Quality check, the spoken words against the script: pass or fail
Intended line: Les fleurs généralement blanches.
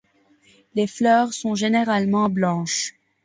fail